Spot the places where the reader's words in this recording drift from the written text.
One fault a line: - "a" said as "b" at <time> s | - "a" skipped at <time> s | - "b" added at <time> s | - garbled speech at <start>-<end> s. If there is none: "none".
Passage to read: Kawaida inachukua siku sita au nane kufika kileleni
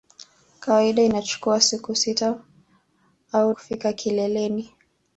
- "nane" skipped at 3.5 s